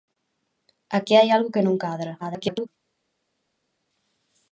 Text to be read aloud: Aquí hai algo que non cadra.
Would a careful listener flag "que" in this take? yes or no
no